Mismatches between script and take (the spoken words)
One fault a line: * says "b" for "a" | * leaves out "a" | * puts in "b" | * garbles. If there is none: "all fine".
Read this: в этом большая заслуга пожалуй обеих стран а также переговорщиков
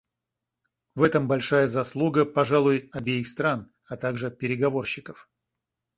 all fine